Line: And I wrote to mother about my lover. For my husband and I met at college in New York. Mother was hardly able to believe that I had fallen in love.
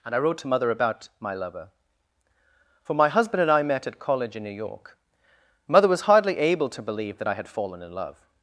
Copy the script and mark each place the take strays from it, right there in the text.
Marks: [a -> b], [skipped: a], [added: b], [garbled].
And I wrote to mother about my lover. For my husband and I met at college in New York. Mother was hardly able to believe that I had fallen in love.